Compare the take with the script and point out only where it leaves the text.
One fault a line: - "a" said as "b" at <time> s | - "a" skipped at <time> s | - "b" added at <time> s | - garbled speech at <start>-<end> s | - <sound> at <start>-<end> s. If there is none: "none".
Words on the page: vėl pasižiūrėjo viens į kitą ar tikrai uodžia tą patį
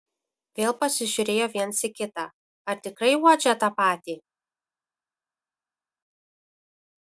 none